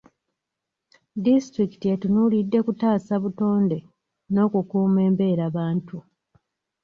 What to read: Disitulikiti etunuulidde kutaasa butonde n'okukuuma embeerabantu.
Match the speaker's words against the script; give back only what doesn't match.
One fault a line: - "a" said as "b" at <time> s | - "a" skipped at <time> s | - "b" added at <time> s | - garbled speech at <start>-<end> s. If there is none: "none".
none